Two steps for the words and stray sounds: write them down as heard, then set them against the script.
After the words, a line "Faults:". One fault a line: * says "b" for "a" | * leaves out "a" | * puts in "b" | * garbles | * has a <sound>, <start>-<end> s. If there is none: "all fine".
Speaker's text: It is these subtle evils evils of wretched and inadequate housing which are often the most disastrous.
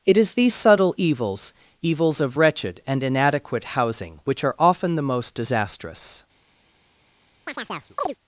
It is these subtle evils evils of wretched and inadequate housing which are often the most disastrous.
Faults:
* has a chirp, 7.5-8.1 s